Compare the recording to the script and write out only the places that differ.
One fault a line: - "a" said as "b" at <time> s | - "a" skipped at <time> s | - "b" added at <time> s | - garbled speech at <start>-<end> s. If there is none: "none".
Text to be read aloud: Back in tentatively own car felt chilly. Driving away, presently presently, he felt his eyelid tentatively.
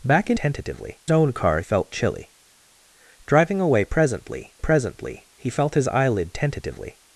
none